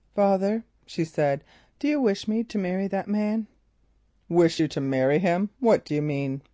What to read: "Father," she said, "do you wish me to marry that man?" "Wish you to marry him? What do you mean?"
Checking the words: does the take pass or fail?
pass